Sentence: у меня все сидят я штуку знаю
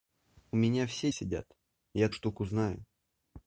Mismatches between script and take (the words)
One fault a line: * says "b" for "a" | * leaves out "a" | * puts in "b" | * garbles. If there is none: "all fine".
all fine